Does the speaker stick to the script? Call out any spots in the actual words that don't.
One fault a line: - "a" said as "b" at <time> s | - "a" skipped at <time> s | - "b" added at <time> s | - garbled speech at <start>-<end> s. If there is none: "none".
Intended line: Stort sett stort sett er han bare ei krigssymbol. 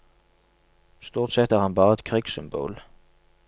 - "stort sett" skipped at 1.5 s
- "ei" said as "et" at 1.9 s